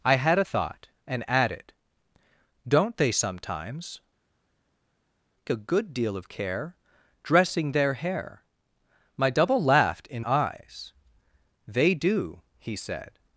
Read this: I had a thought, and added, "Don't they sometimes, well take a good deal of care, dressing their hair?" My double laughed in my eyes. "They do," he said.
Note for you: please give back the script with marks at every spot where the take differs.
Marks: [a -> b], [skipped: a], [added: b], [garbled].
I had a thought, and added, "Don't they sometimes, [skipped: well take] a good deal of care, dressing their hair?" My double laughed in [skipped: my] eyes. "They do," he said.